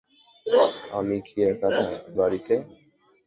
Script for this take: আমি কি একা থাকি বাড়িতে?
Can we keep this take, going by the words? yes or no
no